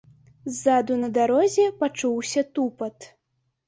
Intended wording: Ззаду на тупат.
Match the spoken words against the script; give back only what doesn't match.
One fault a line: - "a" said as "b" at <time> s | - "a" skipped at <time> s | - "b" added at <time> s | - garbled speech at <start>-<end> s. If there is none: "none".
- "дарозе пачуўся" added at 1.2 s